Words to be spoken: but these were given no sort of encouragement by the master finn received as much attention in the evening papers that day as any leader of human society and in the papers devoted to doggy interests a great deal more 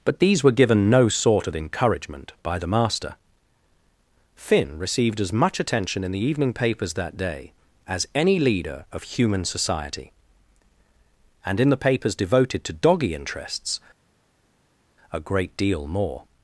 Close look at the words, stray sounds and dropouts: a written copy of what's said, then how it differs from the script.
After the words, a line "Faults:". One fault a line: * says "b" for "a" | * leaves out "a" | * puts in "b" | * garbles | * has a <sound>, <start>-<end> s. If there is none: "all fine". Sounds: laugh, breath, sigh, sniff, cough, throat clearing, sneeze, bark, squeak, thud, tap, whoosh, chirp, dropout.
but these were given no sort of encouragement by the master finn received as much attention in the evening papers that day as any leader of human society and in the papers devoted to doggy interests a great deal more
Faults:
all fine